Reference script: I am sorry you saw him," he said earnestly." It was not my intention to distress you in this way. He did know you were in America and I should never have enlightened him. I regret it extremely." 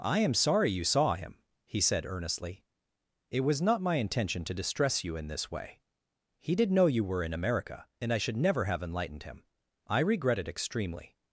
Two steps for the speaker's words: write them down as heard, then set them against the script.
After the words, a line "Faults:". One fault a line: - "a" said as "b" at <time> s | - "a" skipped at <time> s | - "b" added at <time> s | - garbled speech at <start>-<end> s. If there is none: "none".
I am sorry you saw him," he said earnestly." It was not my intention to distress you in this way. He did know you were in America and I should never have enlightened him. I regret it extremely."
Faults:
none